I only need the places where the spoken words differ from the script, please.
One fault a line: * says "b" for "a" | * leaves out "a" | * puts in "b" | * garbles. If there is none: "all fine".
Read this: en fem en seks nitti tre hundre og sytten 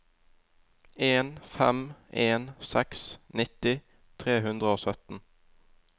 all fine